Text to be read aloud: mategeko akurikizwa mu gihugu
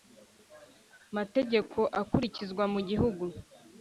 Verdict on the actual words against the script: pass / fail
pass